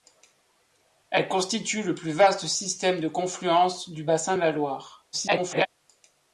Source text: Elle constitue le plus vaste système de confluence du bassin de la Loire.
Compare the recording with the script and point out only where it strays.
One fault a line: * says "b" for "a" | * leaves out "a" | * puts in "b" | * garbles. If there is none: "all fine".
* garbles